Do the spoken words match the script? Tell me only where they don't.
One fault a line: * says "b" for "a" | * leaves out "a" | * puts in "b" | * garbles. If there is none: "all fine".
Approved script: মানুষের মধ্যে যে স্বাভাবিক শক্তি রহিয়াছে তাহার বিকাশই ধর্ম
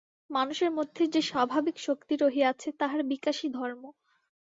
all fine